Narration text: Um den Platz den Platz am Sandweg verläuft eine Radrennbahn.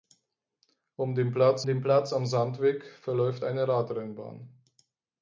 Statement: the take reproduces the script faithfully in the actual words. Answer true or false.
true